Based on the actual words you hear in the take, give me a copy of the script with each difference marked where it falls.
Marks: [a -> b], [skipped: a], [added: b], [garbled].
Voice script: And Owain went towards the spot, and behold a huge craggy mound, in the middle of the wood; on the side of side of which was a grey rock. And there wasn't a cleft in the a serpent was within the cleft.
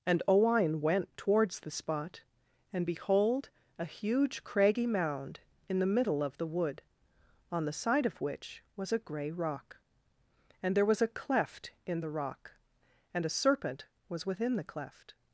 And Owain went towards the spot, and behold a huge craggy mound, in the middle of the wood; on the side of [skipped: side of] which was a grey rock. And there [wasn't -> was] a cleft in the [added: rock and] a serpent was within the cleft.